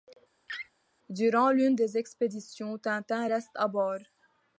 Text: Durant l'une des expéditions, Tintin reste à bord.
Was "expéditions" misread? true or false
false